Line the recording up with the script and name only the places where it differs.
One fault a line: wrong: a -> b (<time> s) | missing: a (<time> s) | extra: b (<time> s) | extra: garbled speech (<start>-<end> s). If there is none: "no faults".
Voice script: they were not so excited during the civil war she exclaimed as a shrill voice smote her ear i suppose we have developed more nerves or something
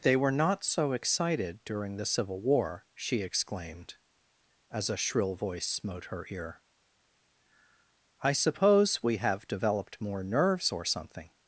no faults